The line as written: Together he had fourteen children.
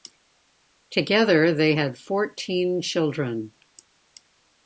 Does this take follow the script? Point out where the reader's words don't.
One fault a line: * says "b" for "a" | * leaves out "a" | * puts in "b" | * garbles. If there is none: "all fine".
* says "they" for "he"